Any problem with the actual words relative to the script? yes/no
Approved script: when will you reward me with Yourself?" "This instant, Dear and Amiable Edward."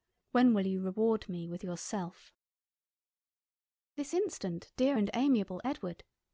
no